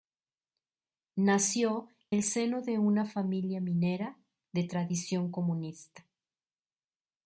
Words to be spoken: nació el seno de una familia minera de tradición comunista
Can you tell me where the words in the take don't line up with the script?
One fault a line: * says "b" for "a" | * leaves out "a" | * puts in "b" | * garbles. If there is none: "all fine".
all fine